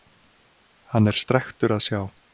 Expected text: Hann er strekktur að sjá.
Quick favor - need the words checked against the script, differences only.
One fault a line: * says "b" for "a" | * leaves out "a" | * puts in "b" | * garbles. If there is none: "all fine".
all fine